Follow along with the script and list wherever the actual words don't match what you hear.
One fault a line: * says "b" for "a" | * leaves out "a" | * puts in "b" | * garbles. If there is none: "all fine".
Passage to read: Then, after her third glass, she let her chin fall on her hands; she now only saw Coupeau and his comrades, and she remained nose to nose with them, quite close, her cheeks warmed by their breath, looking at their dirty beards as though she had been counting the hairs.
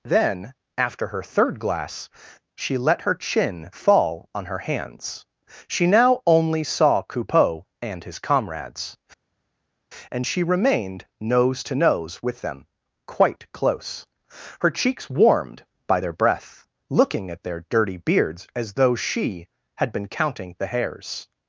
all fine